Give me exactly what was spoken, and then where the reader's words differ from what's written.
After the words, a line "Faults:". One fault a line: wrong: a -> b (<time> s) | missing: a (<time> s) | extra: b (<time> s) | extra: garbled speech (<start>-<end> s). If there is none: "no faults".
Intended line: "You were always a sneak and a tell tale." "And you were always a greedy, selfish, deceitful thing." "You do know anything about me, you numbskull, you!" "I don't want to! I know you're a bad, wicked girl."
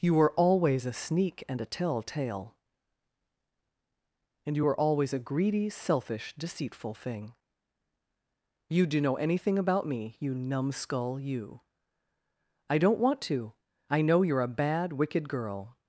"You were always a sneak and a tell tale." "And you were always a greedy, selfish, deceitful thing." "You do know anything about me, you numbskull, you!" "I don't want to! I know you're a bad, wicked girl."
Faults:
no faults